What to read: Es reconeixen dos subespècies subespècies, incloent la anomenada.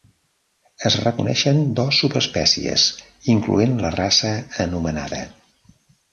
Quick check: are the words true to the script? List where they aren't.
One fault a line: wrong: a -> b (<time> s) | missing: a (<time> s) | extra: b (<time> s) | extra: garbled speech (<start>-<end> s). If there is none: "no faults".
missing: subespècies (2.9 s)
extra: raça (4.0 s)